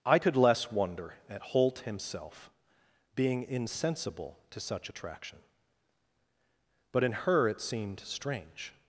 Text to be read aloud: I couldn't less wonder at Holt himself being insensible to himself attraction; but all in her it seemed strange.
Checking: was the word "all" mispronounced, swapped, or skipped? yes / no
yes